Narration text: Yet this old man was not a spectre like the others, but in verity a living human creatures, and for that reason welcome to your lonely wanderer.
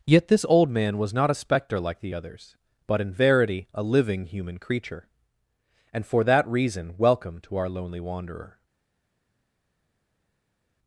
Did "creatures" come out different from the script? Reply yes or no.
yes